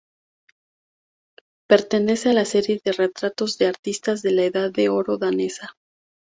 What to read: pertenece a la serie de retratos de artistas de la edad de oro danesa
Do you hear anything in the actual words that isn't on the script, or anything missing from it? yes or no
no